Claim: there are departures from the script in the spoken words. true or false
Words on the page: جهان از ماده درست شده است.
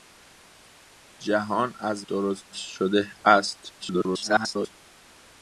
true